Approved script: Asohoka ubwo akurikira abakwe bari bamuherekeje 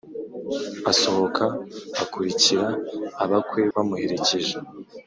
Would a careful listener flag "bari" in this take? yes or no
yes